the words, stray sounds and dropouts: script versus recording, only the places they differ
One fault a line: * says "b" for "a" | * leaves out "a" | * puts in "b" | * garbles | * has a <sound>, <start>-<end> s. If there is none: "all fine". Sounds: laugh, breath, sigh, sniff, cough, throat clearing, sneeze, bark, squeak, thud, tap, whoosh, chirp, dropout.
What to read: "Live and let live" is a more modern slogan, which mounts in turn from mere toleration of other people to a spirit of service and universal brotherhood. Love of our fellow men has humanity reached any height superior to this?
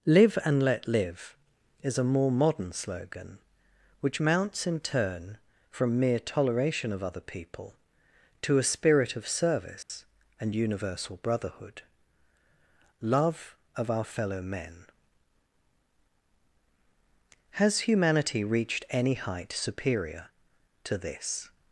* has a dropout, 9.8-9.9 s